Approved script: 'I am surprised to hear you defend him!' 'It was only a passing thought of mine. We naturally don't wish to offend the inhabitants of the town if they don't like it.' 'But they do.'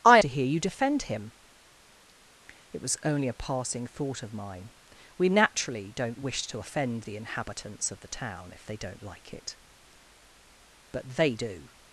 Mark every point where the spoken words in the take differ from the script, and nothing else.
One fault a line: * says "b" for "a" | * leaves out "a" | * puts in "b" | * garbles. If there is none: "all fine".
* leaves out "am surprised"